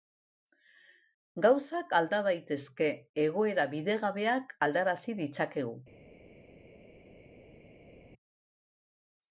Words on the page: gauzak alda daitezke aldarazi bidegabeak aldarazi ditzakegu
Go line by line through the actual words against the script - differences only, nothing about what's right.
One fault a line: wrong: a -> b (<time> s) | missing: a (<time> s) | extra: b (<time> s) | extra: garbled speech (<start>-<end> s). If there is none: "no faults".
wrong: aldarazi -> egoera (3.3 s)